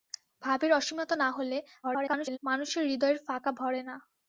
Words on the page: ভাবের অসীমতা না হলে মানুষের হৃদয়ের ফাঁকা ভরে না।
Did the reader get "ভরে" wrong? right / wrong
right